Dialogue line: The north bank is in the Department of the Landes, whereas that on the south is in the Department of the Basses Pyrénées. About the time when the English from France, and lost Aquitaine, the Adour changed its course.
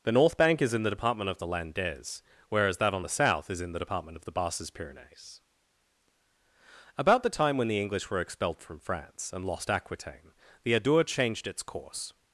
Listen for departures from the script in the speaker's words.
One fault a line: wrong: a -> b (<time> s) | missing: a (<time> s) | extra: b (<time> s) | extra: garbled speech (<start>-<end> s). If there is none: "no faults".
extra: were expelled (8.1 s)